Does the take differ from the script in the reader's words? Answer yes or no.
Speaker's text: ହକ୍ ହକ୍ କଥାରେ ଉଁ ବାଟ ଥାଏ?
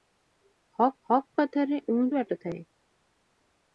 no